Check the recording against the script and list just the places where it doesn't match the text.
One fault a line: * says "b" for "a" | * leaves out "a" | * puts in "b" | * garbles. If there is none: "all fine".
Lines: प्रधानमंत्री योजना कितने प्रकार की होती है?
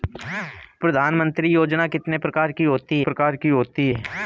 * puts in "प्रकार की होती"